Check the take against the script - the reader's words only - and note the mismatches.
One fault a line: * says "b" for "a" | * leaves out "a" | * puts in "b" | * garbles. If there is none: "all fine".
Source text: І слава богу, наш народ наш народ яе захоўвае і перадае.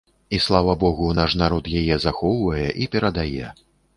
* leaves out "наш народ"